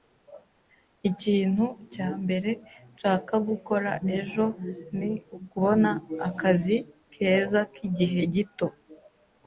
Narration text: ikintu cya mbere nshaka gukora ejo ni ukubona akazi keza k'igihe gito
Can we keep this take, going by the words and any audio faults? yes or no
yes